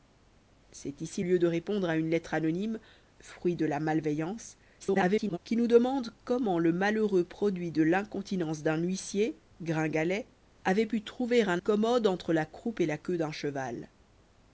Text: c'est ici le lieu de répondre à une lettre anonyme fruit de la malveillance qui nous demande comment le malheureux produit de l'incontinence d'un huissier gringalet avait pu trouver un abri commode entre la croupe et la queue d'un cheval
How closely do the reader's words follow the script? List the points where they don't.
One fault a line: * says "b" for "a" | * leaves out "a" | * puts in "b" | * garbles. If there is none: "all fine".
* leaves out "le"
* garbles
* leaves out "abri"